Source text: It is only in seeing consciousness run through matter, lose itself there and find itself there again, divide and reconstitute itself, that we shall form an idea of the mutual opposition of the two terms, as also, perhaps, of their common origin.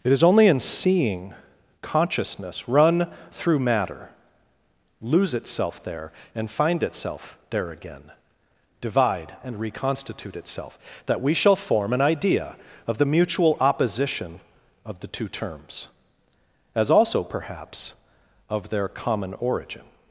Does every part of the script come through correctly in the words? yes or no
yes